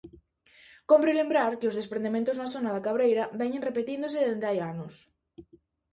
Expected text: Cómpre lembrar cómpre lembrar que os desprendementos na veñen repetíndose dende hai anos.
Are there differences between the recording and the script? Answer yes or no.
yes